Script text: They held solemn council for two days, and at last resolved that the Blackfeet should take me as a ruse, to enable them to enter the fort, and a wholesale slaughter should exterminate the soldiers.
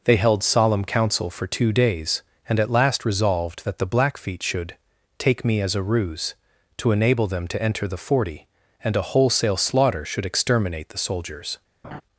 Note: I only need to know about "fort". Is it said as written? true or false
false